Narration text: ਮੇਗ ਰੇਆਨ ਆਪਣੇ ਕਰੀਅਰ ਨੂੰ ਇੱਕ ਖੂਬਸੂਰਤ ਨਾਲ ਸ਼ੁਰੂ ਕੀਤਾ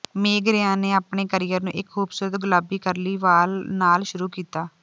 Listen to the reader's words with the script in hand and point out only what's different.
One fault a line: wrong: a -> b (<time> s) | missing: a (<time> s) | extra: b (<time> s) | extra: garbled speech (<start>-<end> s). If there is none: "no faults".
extra: ਨੇ (0.8 s)
extra: ਗੁਲਾਬੀ ਕਰਲੀ ਵਾਲ (2.4 s)